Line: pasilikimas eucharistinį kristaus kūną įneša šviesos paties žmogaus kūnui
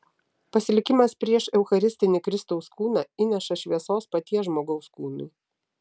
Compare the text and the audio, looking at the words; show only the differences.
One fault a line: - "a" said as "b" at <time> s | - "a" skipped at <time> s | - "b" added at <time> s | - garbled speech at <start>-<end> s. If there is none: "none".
- "prieš" added at 1.2 s